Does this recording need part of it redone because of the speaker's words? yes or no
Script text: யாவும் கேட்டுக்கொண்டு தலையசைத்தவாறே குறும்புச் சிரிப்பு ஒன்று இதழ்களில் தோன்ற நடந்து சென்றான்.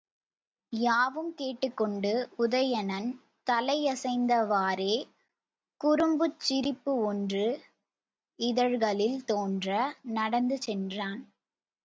yes